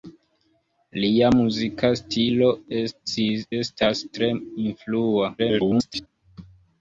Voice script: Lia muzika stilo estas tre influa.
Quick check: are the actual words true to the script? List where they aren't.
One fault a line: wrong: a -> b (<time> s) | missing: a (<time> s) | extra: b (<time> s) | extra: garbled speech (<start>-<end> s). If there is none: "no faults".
extra: garbled speech (5.4-6.1 s)